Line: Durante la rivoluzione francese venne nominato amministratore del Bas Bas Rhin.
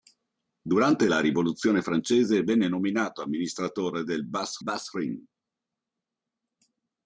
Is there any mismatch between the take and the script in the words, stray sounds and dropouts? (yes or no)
no